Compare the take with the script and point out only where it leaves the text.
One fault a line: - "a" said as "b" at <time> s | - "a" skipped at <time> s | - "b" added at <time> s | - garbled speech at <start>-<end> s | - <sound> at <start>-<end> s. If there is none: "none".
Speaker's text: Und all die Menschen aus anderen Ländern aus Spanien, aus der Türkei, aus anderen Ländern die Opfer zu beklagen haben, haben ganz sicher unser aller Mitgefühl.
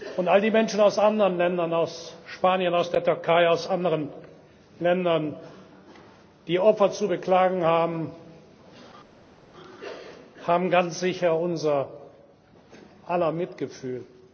none